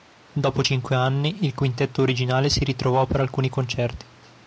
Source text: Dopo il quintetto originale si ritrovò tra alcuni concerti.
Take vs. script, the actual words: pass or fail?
fail